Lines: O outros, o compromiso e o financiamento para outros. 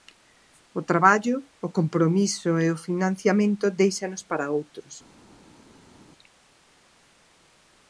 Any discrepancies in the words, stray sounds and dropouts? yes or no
yes